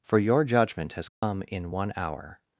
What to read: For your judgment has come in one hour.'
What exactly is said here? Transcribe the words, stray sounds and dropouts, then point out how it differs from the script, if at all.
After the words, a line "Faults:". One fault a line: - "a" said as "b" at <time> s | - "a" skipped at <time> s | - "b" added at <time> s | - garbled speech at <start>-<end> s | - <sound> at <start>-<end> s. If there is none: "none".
For your judgment has come in one hour.'
Faults:
- dropout at 1.1-1.2 s